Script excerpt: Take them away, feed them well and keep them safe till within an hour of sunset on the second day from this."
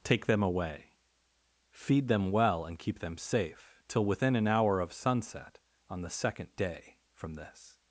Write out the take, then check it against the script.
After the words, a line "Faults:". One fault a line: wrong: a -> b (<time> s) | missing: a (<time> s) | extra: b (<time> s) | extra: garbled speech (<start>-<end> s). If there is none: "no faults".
Take them away, feed them well and keep them safe till within an hour of sunset on the second day from this."
Faults:
no faults